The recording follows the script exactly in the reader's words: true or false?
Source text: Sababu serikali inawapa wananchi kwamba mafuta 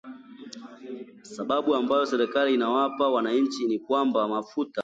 false